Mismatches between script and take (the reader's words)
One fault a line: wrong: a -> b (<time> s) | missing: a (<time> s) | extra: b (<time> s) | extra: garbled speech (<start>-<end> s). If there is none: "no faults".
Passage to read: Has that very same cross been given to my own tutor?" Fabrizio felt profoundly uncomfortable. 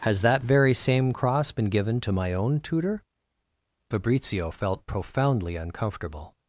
no faults